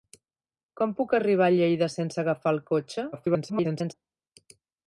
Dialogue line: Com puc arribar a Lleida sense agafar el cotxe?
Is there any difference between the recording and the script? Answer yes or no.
yes